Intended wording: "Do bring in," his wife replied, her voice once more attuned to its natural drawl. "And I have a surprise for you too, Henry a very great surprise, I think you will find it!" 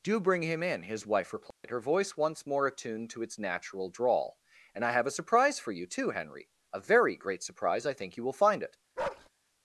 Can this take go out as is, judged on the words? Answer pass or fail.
fail